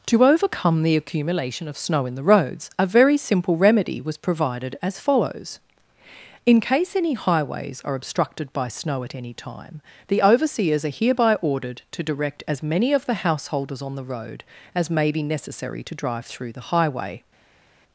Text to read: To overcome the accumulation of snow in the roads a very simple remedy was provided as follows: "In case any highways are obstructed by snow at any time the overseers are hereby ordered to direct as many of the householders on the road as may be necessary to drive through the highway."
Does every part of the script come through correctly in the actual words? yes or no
yes